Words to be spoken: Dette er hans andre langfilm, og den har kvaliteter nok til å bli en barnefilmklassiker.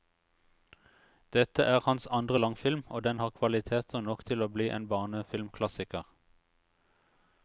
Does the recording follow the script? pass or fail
pass